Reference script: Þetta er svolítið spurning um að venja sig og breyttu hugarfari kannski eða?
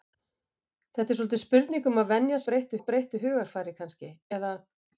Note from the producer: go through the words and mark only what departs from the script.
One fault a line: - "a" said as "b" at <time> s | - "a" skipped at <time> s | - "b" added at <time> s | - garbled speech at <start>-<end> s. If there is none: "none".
- "sig" said as "breyttu" at 2.5 s